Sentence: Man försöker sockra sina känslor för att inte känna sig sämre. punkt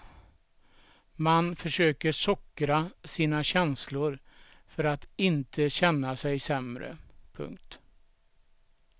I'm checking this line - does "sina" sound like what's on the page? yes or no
yes